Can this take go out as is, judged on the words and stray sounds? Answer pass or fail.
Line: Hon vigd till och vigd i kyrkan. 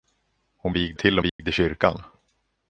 fail